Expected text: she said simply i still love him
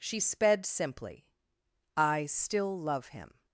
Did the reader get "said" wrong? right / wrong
wrong